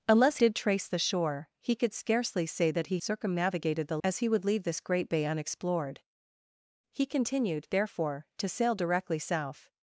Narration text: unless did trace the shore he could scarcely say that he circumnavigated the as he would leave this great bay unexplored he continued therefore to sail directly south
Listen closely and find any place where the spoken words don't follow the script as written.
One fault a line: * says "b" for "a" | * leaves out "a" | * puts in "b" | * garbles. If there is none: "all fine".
all fine